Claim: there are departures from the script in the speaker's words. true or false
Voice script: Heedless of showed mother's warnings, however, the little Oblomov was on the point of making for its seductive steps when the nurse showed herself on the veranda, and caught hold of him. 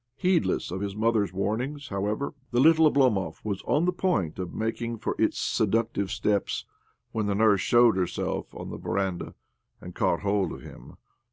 true